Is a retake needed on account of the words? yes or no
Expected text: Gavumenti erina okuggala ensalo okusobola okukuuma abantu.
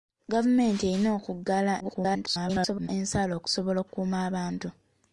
yes